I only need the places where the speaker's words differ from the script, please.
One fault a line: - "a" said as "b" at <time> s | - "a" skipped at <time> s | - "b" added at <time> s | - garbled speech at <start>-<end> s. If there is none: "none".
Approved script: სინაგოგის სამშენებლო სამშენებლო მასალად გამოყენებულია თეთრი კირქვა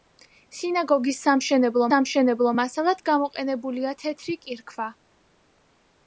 none